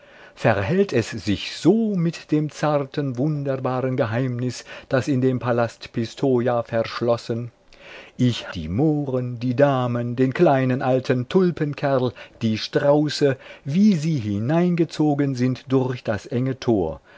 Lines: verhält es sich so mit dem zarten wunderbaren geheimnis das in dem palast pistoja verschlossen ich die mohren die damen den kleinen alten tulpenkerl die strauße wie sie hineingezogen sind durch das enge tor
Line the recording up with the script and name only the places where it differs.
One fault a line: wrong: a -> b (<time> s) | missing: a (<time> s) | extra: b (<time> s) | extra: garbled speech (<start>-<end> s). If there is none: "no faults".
no faults